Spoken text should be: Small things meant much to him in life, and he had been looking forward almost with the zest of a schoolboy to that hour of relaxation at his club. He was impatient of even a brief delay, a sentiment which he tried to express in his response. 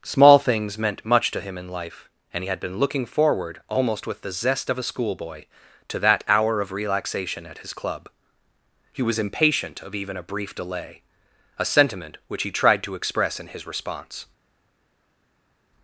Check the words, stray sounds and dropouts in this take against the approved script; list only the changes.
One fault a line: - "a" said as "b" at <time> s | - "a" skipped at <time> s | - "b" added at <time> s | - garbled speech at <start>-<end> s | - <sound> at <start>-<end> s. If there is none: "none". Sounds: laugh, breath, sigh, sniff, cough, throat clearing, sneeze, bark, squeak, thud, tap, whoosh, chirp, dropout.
none